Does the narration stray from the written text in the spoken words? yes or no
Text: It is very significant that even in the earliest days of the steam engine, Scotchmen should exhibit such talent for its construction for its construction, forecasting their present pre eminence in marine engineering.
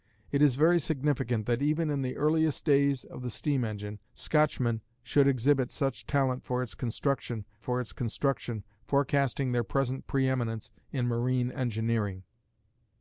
no